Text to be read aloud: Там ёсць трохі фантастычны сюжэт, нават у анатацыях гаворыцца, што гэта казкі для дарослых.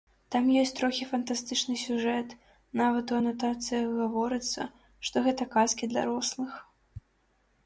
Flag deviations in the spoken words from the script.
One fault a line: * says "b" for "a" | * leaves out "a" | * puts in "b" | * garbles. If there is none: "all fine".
* leaves out "для"